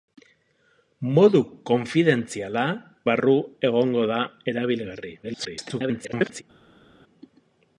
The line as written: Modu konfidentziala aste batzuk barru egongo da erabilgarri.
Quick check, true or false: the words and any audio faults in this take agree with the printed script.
false